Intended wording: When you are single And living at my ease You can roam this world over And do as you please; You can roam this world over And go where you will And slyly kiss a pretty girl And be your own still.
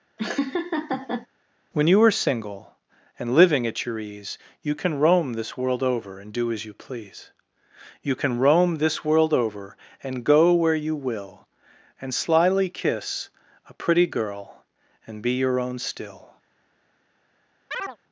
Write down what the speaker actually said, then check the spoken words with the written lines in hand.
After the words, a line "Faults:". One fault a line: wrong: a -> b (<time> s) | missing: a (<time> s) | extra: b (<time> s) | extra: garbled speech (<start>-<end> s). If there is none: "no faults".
When you are single And living at your ease You can roam this world over And do as you please; You can roam this world over And go where you will And slyly kiss a pretty girl And be your own still.
Faults:
wrong: my -> your (3.9 s)